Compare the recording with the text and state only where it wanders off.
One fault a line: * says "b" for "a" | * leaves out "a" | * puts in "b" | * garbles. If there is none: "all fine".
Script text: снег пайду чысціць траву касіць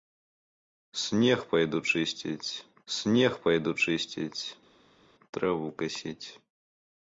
* puts in "снег пайду чысціць"